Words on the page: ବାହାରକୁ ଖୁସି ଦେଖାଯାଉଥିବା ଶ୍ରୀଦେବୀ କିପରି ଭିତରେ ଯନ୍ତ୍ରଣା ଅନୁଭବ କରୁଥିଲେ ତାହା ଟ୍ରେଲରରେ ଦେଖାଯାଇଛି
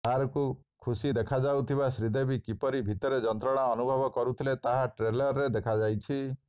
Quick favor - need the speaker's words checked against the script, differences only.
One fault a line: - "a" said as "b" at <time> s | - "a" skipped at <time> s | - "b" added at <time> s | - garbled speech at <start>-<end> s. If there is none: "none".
none